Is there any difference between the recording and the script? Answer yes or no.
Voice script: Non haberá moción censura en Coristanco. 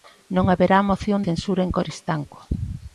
no